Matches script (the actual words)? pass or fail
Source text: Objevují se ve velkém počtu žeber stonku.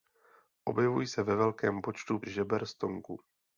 pass